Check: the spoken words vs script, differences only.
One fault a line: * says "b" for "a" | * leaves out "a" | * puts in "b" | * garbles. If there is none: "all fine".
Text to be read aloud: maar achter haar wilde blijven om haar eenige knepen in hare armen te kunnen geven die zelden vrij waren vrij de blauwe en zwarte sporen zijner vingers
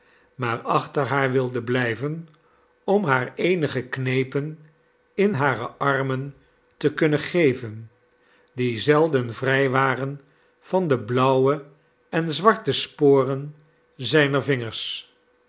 * says "van" for "vrij"